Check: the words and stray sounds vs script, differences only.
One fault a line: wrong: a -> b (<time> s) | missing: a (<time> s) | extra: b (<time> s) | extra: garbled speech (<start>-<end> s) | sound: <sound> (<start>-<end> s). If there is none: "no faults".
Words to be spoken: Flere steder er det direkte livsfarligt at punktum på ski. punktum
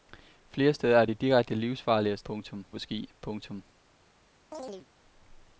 sound: chirp (4.5-4.9 s)